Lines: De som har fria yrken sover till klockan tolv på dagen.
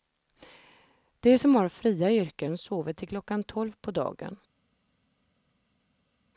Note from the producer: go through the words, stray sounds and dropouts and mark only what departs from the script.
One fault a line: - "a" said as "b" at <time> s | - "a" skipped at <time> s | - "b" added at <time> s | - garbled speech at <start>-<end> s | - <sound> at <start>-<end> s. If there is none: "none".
none